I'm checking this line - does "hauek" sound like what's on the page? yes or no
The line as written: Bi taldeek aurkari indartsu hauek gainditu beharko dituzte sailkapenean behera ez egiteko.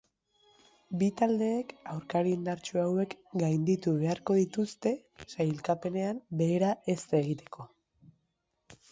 yes